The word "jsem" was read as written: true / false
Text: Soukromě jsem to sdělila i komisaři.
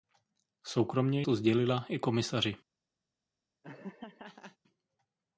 false